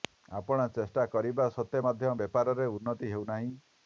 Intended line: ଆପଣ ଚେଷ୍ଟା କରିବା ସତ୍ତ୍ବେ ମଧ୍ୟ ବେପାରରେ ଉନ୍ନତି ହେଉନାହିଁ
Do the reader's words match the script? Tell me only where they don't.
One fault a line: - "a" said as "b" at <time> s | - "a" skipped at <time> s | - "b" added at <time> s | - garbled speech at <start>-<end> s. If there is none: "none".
none